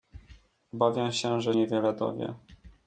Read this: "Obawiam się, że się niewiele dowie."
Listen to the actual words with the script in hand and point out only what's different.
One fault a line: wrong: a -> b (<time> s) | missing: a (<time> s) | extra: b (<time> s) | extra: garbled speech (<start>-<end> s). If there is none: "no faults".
missing: się (1.6 s)